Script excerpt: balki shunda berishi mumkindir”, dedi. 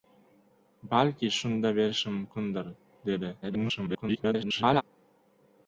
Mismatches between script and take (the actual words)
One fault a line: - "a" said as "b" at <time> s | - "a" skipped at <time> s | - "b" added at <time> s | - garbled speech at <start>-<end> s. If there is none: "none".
- garbled speech at 3.4-4.8 s